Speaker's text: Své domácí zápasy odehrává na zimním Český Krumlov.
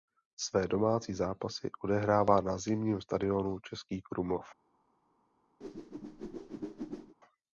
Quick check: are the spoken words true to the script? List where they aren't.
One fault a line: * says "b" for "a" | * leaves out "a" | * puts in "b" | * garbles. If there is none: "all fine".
* puts in "stadionu"